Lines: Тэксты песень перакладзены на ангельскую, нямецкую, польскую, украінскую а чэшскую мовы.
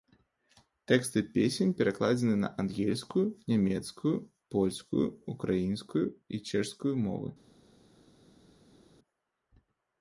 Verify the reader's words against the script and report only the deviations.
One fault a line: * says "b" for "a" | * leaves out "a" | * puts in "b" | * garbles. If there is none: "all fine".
* says "і" for "а"